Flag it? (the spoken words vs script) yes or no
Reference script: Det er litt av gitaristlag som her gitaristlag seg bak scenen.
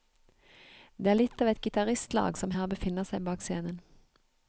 yes